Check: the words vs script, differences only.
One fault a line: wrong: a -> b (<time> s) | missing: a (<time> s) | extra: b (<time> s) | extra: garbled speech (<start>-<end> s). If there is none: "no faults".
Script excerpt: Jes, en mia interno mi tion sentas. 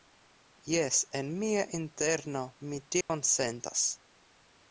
no faults